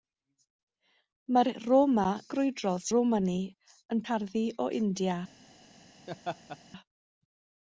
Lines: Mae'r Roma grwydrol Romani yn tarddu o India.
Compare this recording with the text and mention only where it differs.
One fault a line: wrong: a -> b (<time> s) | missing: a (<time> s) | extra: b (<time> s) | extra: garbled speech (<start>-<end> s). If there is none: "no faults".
no faults